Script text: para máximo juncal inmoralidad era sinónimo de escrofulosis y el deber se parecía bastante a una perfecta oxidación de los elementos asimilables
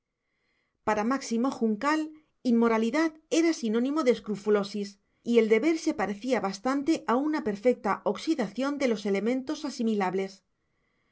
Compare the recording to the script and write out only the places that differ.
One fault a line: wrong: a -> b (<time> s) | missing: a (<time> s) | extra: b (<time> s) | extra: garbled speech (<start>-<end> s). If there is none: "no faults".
no faults